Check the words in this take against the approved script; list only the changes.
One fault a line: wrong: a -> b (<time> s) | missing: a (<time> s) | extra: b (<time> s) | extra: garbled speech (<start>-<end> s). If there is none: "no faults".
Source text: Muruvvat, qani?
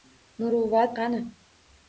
no faults